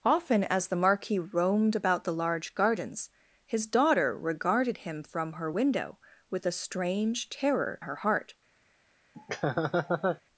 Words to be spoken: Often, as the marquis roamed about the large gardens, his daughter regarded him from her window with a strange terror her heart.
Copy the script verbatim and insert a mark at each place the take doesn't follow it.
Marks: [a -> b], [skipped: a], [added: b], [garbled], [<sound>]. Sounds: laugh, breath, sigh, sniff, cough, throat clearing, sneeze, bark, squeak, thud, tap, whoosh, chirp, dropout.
Often, as the marquis roamed about the large gardens, his daughter regarded him from her window with a strange terror her heart. [laugh]